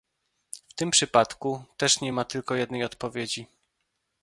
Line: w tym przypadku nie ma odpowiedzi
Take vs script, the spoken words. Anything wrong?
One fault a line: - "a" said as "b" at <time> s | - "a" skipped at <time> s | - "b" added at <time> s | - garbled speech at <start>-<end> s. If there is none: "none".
- "też" added at 1.8 s
- "tylko jednej" added at 2.2 s